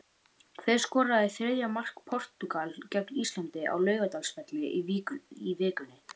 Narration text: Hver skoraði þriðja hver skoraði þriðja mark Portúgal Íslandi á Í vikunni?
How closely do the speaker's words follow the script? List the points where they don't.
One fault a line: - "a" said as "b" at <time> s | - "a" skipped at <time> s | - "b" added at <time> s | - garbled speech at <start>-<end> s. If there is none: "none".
- "hver skoraði þriðja" skipped at 1.7 s
- "gegn" added at 3.0 s
- "Laugardalsvelli" added at 3.9 s